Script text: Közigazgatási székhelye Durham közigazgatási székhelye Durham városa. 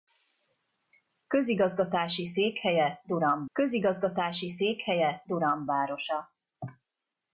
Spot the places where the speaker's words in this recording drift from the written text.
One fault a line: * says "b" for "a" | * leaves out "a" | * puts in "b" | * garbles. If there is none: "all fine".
all fine